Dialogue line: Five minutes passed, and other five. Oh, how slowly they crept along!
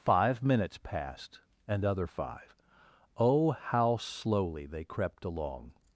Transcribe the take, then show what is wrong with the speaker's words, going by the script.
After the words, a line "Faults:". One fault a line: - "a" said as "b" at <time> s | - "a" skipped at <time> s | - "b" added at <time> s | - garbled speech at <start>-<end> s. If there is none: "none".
Five minutes passed, and other five. Oh, how slowly they crept along!
Faults:
none